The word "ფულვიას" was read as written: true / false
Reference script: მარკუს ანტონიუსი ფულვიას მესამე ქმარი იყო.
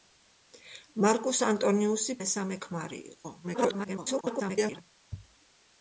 false